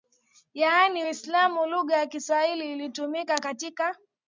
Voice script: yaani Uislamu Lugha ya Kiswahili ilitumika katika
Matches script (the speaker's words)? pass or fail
pass